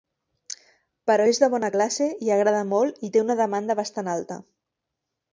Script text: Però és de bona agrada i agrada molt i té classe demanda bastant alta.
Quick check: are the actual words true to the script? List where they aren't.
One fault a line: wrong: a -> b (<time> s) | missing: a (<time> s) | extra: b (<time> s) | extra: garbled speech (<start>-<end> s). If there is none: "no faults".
wrong: agrada -> classe (1.7 s)
wrong: classe -> una (3.3 s)